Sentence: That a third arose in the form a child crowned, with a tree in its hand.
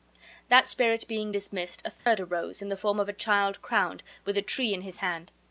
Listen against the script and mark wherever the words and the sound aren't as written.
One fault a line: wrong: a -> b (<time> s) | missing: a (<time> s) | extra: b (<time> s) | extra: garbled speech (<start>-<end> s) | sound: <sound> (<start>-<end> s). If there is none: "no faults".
extra: spirit being dismissed (0.7 s)
sound: dropout (2.0-2.1 s)
extra: of (3.0 s)
wrong: its -> his (4.8 s)